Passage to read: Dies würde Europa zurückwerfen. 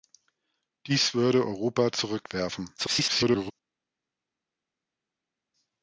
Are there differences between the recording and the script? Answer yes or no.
yes